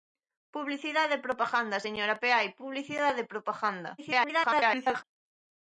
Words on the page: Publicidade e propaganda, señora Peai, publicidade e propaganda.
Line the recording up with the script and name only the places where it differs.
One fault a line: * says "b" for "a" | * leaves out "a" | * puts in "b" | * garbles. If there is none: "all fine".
* garbles